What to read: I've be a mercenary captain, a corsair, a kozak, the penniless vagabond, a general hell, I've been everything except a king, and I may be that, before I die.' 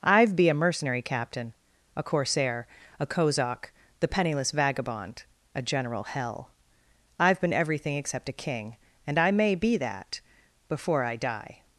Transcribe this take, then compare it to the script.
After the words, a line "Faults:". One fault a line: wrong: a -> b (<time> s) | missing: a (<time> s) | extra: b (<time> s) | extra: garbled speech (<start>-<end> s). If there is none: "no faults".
I've be a mercenary captain, a corsair, a kozak, the penniless vagabond, a general hell, I've been everything except a king, and I may be that, before I die.'
Faults:
no faults